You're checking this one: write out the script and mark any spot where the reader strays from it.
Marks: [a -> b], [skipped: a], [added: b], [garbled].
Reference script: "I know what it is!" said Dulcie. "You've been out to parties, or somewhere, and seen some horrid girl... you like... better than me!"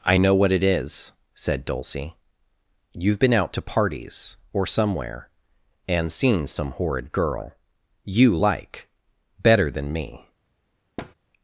"I know what it is!" said Dulcie. "You've been out to parties, or somewhere, and seen some horrid girl... you like... better than me!"